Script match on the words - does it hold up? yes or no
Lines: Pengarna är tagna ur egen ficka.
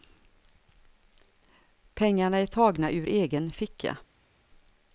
yes